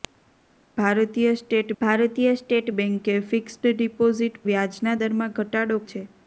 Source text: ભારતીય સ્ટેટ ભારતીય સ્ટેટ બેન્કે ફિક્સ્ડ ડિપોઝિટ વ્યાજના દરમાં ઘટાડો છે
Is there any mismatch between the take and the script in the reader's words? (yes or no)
no